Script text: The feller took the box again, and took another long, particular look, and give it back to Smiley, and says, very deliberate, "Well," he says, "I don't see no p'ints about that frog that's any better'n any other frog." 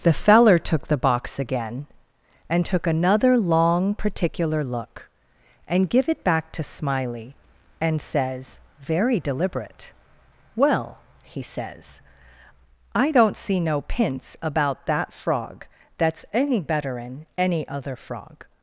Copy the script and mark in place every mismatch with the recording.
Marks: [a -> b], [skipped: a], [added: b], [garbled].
The feller took the box again, and took another long, particular look, and give it back to Smiley, and says, very deliberate, "Well," he says, "I don't see no p'ints about that frog that's any better'n any other frog."